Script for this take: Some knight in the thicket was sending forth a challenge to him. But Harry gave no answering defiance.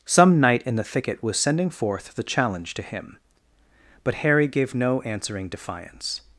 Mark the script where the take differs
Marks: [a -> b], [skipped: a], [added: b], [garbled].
Some knight in the thicket was sending forth [a -> the] challenge to him. But Harry gave no answering defiance.